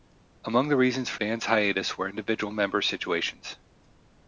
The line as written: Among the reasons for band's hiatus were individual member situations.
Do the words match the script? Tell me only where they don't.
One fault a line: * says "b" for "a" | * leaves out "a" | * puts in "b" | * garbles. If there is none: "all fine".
all fine